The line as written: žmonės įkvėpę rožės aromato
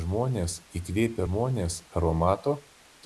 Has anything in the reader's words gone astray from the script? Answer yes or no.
yes